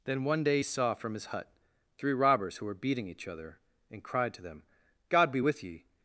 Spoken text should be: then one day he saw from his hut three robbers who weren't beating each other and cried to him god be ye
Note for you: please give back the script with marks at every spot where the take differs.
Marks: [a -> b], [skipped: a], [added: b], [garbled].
then one day he saw from his hut three robbers who [weren't -> were] beating each other and cried to [him -> them] god be [added: with] ye